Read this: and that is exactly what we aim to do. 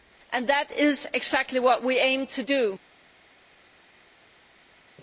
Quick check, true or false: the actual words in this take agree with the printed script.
true